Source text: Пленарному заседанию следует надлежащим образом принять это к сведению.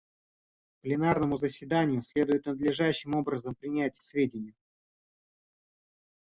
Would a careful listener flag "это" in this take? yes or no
yes